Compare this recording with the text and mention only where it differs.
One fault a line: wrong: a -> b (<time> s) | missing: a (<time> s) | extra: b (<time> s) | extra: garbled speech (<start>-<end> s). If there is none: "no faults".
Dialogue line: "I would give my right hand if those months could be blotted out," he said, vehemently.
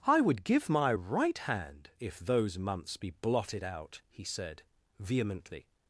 missing: could (3.0 s)